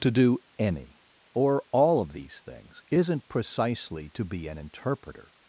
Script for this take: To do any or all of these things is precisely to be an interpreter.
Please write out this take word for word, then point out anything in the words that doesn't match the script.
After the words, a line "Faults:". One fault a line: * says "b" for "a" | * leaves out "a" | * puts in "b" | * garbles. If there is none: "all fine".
To do any or all of these things isn't precisely to be an interpreter.
Faults:
* says "isn't" for "is"